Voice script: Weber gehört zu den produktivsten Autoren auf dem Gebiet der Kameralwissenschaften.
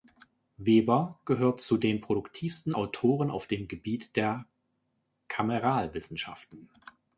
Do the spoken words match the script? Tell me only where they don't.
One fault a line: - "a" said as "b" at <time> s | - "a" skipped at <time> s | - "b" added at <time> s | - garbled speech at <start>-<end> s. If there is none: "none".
none